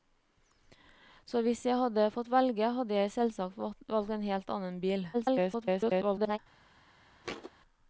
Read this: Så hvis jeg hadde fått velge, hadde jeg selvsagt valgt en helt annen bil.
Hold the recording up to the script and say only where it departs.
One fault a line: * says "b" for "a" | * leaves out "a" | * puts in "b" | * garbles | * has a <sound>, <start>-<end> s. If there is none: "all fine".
* garbles
* has a thud, 7.2-7.5 s